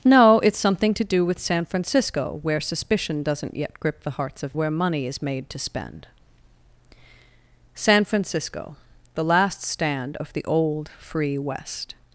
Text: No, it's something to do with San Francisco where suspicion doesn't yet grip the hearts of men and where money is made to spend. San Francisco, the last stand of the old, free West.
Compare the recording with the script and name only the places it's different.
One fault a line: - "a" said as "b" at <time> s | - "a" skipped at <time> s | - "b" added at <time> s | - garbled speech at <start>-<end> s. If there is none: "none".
- "men and" skipped at 4.6 s